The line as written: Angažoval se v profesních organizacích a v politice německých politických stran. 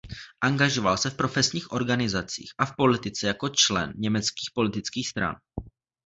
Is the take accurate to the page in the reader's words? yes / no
no